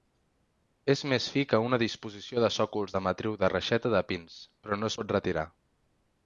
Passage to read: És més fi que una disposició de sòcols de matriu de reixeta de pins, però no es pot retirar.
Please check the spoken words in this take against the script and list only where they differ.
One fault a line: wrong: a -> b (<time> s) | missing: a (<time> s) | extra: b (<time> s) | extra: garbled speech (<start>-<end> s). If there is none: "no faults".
no faults